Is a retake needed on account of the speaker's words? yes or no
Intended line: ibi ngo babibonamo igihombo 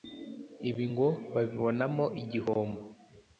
no